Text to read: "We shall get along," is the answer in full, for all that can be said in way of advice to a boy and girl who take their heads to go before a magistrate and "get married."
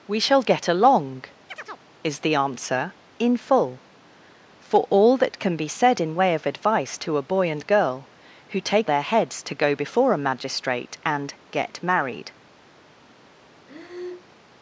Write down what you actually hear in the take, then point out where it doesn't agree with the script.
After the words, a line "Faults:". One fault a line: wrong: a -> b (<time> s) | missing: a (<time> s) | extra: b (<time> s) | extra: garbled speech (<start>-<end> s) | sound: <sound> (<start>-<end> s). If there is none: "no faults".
"We shall get along," is the answer in full, for all that can be said in way of advice to a boy and girl who take their heads to go before a magistrate and "get married."
Faults:
sound: chirp (1.5-1.9 s)
sound: breath (13.7-14.3 s)